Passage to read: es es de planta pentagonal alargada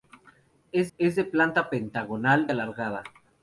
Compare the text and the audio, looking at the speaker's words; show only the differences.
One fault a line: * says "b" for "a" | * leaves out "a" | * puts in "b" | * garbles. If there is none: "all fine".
all fine